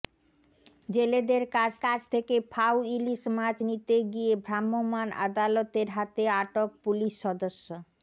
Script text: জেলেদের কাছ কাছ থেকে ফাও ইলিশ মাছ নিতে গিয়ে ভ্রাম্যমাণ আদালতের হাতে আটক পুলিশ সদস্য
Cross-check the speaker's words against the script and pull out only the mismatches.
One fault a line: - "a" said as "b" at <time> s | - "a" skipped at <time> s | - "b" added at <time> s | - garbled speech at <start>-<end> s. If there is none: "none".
none